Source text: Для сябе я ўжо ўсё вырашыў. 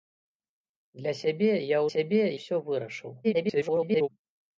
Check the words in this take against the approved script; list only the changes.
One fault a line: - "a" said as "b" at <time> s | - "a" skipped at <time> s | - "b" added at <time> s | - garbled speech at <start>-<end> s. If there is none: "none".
- "ўжо" said as "сябе" at 1.9 s
- garbled speech at 3.2-4.1 s